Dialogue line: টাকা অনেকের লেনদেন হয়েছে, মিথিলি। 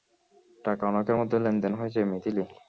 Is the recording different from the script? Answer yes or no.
yes